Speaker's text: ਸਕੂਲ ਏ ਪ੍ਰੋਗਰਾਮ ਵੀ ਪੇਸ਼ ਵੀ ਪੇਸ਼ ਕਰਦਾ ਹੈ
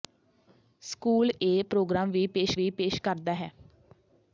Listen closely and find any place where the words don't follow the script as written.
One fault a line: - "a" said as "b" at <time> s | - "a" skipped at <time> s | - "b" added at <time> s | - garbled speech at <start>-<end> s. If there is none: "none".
none